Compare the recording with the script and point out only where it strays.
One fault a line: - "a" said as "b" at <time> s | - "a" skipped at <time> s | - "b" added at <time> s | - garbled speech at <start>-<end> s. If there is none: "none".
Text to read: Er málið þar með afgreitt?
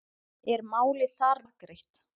- "með" skipped at 1.4 s